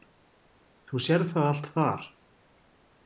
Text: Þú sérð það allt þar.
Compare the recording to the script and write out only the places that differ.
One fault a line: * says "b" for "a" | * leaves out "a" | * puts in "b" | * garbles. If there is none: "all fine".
all fine